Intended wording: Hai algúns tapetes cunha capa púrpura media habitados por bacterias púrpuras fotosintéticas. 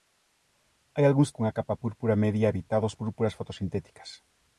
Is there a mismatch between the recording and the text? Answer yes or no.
yes